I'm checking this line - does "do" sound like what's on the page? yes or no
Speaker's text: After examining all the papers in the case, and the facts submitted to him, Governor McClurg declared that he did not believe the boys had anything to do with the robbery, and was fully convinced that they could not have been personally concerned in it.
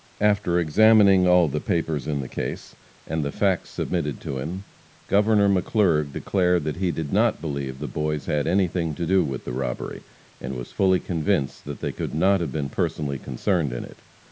yes